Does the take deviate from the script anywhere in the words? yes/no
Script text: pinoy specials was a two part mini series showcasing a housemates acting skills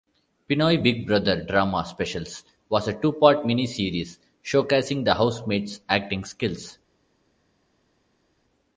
yes